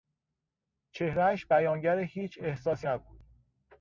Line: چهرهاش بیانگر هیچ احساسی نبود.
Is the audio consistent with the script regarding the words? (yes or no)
yes